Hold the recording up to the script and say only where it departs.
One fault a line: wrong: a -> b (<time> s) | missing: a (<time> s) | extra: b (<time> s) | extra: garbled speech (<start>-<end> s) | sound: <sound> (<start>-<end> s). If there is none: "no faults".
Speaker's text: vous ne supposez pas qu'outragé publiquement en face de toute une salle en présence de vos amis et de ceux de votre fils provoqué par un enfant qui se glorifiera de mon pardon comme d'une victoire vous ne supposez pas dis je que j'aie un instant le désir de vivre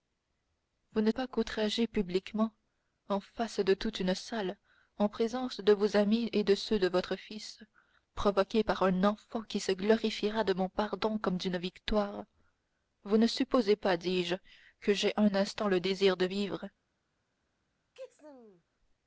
missing: supposez (1.1 s)
sound: sneeze (17.9-18.6 s)